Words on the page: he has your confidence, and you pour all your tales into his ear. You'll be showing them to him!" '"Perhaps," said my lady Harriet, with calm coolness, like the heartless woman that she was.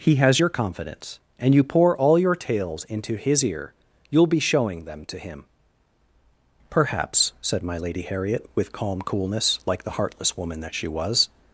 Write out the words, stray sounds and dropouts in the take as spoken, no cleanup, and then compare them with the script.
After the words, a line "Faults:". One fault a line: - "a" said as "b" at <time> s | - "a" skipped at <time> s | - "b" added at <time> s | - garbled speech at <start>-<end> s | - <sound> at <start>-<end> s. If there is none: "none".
he has your confidence, and you pour all your tales into his ear. You'll be showing them to him!" '"Perhaps," said my lady Harriet, with calm coolness, like the heartless woman that she was.
Faults:
none